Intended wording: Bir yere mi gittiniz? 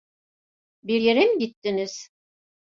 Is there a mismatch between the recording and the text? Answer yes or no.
no